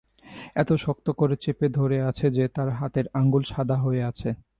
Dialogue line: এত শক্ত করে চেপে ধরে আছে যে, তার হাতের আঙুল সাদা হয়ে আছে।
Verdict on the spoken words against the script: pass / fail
pass